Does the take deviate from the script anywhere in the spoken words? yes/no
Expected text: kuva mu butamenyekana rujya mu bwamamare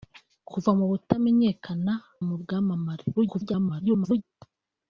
yes